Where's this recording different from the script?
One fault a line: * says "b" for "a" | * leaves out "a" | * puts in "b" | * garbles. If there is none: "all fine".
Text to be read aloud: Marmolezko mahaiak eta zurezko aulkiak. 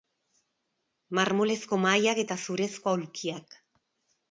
all fine